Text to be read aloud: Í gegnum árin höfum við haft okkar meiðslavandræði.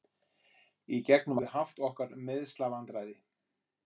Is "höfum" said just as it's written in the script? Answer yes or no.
no